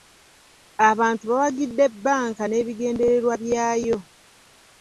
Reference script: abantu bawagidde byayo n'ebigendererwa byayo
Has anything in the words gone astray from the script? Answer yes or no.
yes